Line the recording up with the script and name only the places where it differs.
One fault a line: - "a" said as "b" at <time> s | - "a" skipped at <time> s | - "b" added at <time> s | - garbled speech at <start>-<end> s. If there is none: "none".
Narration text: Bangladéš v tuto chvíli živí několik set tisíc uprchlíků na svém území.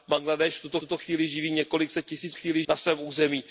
- "tuto" added at 0.8 s
- "uprchlíků" said as "chvíli" at 2.3 s